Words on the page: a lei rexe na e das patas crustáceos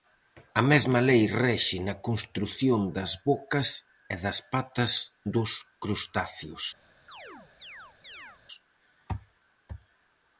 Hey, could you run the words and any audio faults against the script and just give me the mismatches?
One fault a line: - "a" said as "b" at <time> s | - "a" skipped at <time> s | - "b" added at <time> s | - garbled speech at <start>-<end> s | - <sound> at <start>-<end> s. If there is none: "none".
- "mesma" added at 0.7 s
- "construción das bocas" added at 2.1 s
- "dos" added at 5.3 s
- chirp at 7.1-8.4 s